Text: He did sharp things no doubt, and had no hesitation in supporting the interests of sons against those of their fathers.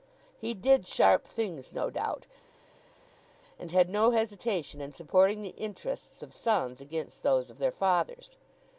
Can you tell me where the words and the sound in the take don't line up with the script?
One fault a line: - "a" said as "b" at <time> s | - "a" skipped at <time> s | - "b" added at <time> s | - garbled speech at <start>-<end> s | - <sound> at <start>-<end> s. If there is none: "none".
none